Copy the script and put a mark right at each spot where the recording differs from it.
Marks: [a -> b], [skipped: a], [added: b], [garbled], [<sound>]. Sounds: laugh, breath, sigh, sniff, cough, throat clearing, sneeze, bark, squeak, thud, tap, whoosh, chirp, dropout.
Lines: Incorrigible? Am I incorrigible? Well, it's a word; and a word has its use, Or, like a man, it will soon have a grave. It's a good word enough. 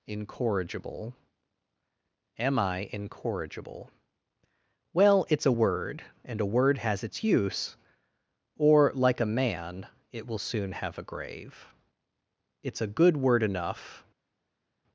Incorrigible? Am I incorrigible? Well, it's a word; and a word has its use, Or, like a man, it will soon have a grave. It's a good word enough.